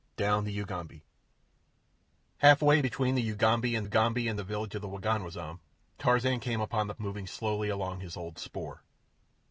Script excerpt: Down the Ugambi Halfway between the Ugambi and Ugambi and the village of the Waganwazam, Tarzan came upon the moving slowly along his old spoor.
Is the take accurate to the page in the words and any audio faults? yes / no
yes